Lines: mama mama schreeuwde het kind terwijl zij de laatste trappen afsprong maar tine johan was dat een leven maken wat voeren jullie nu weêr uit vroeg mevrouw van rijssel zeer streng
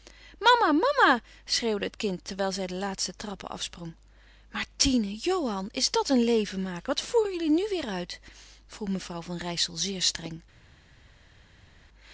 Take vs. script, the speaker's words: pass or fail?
fail